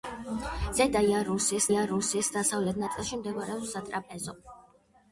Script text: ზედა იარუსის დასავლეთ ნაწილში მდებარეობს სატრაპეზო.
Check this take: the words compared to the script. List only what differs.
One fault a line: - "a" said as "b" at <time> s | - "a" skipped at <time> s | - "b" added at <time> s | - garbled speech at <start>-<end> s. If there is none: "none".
- "იარუსის" added at 1.7 s